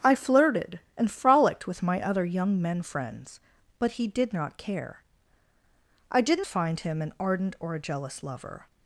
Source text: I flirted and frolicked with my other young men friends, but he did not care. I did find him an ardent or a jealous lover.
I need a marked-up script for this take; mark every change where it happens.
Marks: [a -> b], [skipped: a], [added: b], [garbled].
I flirted and frolicked with my other young men friends, but he did not care. I did find him an ardent or a jealous lover.